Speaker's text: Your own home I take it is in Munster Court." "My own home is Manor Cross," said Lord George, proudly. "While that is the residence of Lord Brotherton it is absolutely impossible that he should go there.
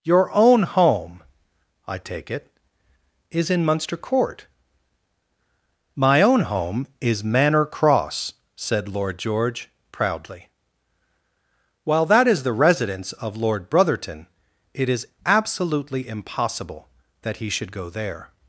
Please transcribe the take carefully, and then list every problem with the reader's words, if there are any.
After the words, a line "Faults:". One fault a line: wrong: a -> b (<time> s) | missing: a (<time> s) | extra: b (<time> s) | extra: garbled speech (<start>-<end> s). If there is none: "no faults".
Your own home I take it is in Munster Court." "My own home is Manor Cross," said Lord George, proudly. "While that is the residence of Lord Brotherton it is absolutely impossible that he should go there.
Faults:
no faults